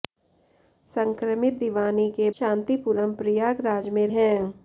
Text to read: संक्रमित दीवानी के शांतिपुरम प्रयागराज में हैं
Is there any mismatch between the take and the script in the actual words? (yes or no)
no